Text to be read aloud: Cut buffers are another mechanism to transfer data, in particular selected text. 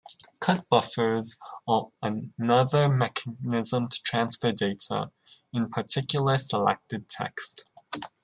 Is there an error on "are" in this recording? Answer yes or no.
no